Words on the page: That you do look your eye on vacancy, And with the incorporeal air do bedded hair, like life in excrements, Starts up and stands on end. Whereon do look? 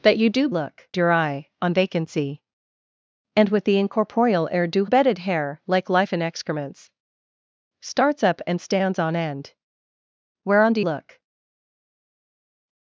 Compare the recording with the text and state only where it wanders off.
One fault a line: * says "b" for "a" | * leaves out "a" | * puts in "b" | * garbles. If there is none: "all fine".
all fine